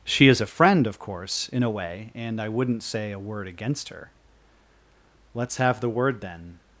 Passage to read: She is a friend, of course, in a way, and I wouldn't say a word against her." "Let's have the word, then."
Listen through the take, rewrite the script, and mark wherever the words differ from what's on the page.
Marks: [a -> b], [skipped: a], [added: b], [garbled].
She is a friend, of course, in a way, and I wouldn't say a word against her." "Let's have the word, then."